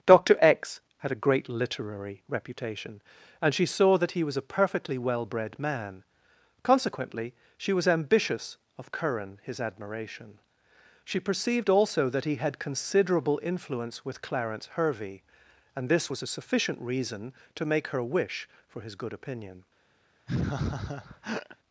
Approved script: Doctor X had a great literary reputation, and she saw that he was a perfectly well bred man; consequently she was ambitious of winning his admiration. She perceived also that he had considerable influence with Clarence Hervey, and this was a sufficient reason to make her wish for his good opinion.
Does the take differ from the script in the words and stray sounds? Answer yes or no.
yes